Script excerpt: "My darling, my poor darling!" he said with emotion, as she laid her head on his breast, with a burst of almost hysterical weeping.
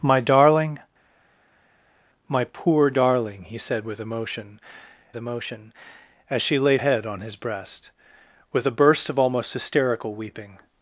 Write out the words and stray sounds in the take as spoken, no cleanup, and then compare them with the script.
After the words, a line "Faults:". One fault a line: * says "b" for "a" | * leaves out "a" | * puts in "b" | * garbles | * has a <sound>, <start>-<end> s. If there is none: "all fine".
"My darling, my poor darling!" he said with emotion emotion, as she laid head on his breast, with a burst of almost hysterical weeping.
Faults:
* puts in "emotion"
* leaves out "her"